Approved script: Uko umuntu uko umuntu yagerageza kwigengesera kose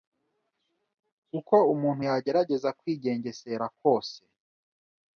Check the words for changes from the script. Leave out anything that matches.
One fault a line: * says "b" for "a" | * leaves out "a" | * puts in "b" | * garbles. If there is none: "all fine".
* leaves out "uko umuntu"